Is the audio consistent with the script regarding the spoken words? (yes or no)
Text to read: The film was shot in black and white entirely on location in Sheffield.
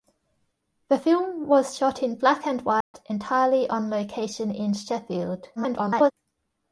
no